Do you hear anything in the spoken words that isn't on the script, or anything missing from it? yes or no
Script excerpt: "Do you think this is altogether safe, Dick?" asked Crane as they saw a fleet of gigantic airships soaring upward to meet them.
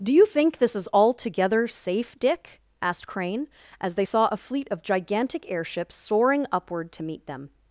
no